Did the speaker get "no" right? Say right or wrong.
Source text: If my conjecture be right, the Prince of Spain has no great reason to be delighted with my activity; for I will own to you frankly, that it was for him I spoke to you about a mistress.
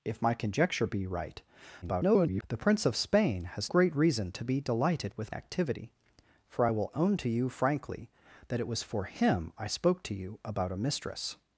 wrong